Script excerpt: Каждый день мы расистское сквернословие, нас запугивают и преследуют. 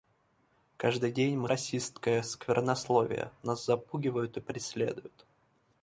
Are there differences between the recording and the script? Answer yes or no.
no